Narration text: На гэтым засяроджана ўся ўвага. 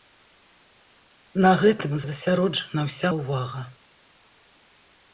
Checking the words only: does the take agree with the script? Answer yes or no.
yes